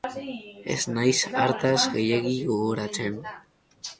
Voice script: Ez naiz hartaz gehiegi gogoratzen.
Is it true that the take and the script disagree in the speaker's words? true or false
false